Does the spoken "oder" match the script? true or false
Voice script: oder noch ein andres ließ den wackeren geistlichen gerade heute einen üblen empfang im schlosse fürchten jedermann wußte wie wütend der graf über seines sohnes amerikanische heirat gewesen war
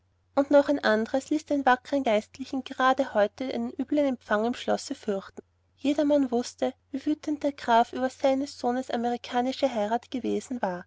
false